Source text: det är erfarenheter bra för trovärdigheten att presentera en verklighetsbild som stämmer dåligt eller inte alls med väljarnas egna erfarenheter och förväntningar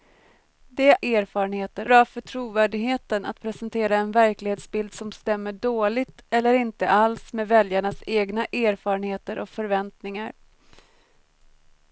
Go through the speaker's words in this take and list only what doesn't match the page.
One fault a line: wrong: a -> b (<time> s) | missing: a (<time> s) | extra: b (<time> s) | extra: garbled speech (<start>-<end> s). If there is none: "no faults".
no faults